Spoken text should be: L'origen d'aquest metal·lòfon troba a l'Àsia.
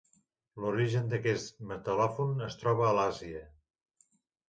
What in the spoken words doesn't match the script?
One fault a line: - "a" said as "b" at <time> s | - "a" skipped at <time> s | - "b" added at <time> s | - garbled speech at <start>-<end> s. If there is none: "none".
- "es" added at 2.5 s